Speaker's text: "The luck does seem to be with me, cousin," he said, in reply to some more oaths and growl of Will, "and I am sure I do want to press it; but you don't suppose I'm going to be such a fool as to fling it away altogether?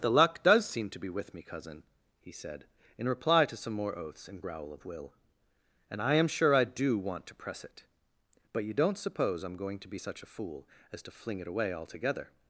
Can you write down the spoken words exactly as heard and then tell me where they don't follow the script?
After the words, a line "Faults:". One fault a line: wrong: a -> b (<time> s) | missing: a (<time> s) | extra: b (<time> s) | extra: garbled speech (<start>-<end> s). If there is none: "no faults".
"The luck does seem to be with me, cousin," he said, in reply to some more oaths and growl of Will, "and I am sure I do want to press it; but you don't suppose I'm going to be such a fool as to fling it away altogether?
Faults:
no faults